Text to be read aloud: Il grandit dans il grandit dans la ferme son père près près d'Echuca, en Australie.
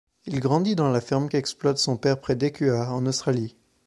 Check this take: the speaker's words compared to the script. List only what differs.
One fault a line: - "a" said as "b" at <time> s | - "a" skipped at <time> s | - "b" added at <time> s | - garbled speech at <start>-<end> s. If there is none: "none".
- "il grandit dans" skipped at 0.9 s
- "qu'exploite" added at 1.3 s
- "près" skipped at 2.4 s